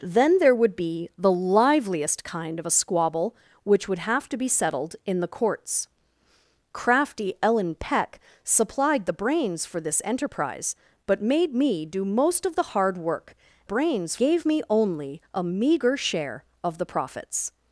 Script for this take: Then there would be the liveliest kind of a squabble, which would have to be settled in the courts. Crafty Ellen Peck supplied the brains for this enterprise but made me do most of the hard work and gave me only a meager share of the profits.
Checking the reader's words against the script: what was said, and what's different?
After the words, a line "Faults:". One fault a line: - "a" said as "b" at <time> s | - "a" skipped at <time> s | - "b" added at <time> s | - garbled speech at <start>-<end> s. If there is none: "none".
Then there would be the liveliest kind of a squabble, which would have to be settled in the courts. Crafty Ellen Peck supplied the brains for this enterprise but made me do most of the hard work brains gave me only a meager share of the profits.
Faults:
- "and" said as "brains" at 13.6 s